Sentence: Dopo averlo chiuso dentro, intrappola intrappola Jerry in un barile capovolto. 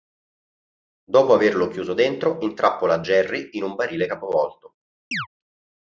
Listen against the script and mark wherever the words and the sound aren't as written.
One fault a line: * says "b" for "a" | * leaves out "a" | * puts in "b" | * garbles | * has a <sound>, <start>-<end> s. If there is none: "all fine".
* leaves out "intrappola"
* has a chirp, 5.1-5.3 s